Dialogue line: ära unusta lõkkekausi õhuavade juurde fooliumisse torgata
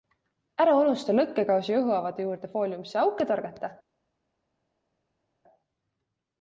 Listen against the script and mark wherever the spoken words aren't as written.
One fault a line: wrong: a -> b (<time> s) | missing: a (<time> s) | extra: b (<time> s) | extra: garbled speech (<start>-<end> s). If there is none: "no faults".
extra: auke (3.0 s)